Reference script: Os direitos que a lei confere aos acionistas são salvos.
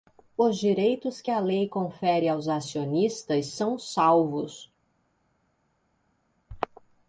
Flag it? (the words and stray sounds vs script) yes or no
no